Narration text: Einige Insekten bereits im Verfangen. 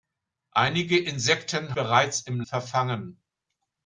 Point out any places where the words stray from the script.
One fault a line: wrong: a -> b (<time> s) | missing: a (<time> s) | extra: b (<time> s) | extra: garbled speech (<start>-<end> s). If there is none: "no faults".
no faults